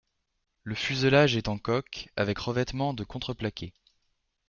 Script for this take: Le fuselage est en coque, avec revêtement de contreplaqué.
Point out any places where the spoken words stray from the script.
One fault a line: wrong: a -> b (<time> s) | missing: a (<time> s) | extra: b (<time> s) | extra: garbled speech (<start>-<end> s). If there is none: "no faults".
no faults